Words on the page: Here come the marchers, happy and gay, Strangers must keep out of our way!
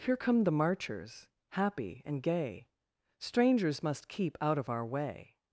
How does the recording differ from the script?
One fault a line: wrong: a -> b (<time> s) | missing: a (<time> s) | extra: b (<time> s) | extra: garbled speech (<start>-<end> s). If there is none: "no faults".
no faults